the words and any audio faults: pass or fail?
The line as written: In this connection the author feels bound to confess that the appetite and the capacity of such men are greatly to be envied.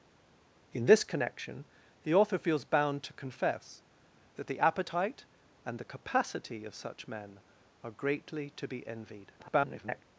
fail